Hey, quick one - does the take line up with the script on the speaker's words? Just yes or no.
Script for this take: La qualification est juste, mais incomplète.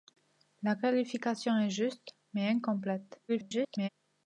no